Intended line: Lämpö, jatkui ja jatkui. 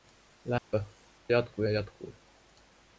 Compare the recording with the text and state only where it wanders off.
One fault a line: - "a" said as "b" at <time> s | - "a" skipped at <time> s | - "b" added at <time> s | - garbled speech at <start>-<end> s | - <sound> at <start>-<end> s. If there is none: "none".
- dropout at 0.6-0.7 s